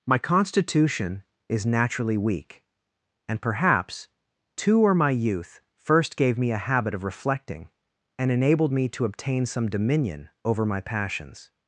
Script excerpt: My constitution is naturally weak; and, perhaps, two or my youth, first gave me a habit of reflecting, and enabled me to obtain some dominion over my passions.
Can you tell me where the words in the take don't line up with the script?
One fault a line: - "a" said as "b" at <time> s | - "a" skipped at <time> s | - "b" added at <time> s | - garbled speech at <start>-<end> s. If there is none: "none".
none